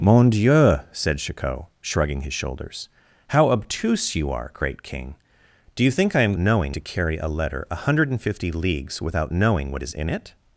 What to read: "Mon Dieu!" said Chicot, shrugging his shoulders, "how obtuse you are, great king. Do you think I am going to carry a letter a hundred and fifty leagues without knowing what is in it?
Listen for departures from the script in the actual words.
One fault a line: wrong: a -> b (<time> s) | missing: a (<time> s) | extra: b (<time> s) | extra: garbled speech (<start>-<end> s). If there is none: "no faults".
wrong: going -> knowing (6.3 s)